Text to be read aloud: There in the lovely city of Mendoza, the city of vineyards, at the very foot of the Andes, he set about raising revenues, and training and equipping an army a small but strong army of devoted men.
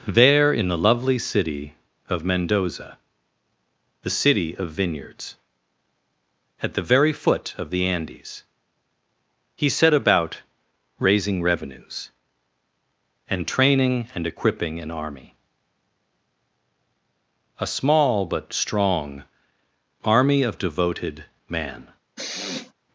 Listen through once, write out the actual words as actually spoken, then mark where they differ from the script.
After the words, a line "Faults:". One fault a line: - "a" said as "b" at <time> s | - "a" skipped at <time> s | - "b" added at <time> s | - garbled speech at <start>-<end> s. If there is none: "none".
There in the lovely city of Mendoza, the city of vineyards, at the very foot of the Andes, he set about raising revenues, and training and equipping an army a small but strong army of devoted man.
Faults:
- "men" said as "man" at 21.5 s